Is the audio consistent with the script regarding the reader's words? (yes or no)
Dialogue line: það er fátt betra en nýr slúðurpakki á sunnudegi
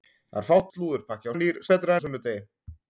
no